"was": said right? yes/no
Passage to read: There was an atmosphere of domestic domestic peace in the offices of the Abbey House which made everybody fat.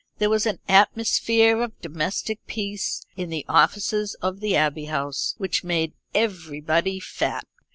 yes